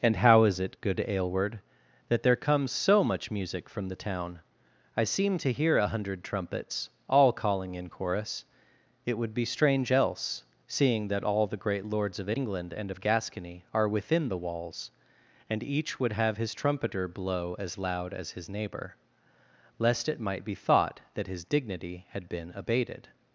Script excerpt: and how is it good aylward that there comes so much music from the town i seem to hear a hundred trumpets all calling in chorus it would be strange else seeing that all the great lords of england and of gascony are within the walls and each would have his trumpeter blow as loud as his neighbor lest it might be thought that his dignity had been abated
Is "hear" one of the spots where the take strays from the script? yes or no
no